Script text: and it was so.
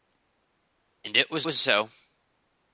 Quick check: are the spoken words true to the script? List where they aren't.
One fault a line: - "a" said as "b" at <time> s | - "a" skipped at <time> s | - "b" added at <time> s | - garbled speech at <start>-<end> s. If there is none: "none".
- "was" added at 1.4 s